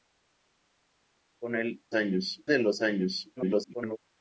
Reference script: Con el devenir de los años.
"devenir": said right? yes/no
no